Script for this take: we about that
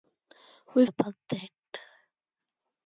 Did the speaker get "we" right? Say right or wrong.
right